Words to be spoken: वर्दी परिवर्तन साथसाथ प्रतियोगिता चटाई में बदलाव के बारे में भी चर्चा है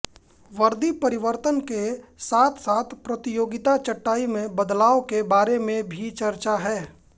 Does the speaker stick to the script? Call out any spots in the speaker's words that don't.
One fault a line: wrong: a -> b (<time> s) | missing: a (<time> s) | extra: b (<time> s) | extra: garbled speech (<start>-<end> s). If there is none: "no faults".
extra: के (1.7 s)